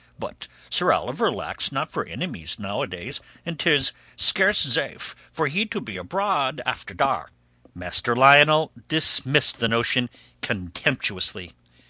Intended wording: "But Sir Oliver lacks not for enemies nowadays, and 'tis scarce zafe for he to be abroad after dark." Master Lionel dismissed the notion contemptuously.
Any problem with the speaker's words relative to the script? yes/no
no